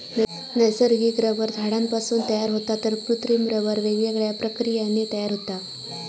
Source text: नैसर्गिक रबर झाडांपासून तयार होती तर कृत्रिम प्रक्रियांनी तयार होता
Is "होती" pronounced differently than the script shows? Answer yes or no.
yes